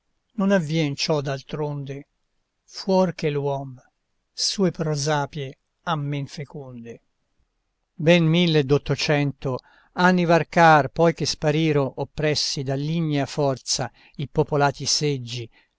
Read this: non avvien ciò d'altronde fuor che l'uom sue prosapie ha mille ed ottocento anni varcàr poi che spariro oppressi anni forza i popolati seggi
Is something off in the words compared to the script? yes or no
yes